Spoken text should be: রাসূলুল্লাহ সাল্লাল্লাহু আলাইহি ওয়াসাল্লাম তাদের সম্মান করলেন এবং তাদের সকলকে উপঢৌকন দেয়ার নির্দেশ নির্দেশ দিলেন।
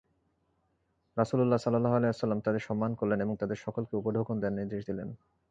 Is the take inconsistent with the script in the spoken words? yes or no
yes